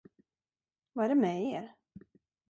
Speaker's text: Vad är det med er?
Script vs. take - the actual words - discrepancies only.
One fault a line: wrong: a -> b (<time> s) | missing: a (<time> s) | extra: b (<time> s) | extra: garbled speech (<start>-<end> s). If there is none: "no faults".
no faults